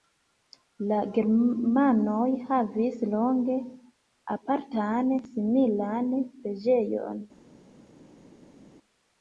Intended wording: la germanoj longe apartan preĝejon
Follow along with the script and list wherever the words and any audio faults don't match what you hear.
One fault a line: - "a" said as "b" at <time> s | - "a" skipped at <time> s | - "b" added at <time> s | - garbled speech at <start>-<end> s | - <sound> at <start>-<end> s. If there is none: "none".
- "havis" added at 2.5 s
- "similan" added at 5.3 s